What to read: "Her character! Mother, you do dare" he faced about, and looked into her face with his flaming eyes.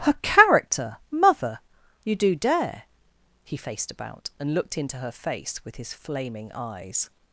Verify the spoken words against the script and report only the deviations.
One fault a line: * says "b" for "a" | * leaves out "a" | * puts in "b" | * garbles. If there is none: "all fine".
all fine